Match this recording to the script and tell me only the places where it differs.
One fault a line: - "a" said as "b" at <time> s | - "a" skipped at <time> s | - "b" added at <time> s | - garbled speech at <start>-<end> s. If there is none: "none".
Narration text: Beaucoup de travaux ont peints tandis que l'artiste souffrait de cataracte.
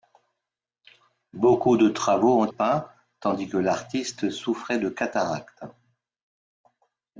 none